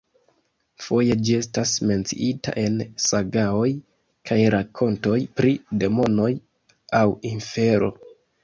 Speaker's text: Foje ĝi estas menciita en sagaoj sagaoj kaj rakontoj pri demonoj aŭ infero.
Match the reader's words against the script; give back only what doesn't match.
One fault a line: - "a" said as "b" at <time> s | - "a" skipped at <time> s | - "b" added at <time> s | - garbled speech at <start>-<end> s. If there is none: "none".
- "sagaoj" skipped at 3.7 s